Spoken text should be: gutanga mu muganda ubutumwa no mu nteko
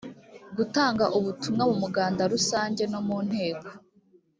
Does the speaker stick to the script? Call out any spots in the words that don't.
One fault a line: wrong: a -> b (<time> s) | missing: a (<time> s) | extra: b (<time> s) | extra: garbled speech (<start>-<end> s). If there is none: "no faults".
extra: ubutumwa (1.2 s)
wrong: ubutumwa -> rusange (2.3 s)